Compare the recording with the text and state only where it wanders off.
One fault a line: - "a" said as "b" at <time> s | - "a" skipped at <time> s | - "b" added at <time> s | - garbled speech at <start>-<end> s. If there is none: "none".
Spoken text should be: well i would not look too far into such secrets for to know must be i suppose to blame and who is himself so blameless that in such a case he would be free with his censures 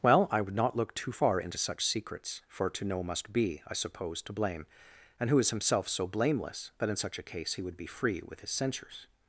none